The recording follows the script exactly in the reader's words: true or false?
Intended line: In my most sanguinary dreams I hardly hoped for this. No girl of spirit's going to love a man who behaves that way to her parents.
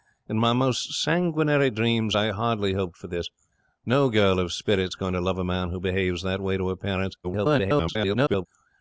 false